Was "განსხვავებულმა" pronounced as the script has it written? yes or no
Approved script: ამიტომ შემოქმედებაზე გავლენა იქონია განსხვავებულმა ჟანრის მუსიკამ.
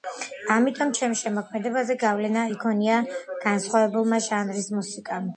yes